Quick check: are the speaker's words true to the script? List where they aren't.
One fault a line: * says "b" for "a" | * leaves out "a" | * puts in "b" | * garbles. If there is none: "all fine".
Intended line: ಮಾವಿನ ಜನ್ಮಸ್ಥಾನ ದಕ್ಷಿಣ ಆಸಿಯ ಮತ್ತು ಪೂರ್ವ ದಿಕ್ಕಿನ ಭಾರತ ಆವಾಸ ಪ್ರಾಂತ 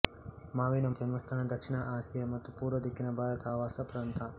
all fine